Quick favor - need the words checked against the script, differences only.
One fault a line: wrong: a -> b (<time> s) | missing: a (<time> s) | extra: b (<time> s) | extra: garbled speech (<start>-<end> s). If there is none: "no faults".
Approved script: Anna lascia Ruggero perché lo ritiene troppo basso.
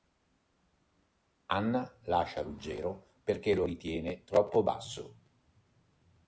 no faults